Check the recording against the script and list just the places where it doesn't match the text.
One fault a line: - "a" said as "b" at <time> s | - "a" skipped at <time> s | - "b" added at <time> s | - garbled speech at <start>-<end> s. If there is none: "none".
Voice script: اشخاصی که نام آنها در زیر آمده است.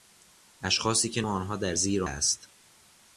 - "نام" skipped at 1.2 s
- "آمده" skipped at 2.0 s